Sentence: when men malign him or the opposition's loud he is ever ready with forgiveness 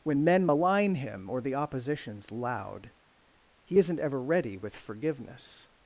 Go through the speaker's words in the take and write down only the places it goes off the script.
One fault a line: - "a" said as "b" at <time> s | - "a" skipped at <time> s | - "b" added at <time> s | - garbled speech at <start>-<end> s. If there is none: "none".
- "is" said as "isn't" at 3.8 s